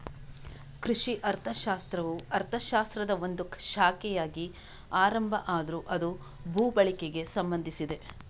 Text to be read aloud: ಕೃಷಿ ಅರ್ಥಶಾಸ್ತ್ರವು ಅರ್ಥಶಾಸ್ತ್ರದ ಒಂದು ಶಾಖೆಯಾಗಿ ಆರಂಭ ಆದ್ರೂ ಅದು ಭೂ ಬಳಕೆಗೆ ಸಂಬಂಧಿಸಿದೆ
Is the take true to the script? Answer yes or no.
yes